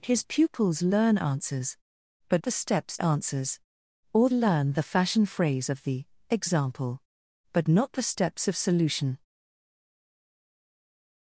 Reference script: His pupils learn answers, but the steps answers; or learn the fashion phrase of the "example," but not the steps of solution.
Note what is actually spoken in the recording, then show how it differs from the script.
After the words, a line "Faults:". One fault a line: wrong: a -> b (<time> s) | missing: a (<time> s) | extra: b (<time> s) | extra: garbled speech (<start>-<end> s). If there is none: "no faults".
His pupils learn answers, but the steps answers; or learn the fashion phrase of the "example," but not the steps of solution.
Faults:
no faults